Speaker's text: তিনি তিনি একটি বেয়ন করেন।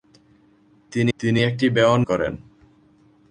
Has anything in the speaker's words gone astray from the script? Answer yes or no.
no